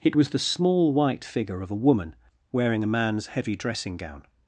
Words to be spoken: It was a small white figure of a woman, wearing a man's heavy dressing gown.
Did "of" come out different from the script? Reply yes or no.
no